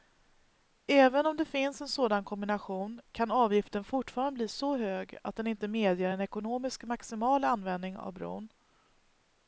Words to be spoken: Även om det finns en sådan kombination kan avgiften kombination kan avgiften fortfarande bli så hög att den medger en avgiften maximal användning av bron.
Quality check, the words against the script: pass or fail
fail